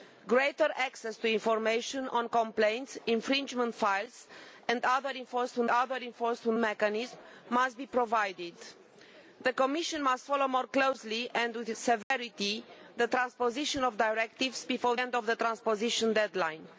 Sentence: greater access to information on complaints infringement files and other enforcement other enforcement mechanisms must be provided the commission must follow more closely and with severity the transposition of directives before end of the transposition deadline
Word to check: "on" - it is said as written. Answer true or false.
true